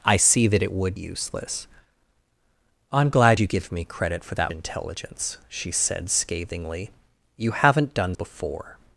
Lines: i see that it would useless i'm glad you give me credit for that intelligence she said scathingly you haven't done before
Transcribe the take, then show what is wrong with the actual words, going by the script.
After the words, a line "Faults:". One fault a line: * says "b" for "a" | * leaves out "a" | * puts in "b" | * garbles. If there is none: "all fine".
i see that it would useless i'm glad you give me credit for that intelligence she said scathingly you haven't done before
Faults:
all fine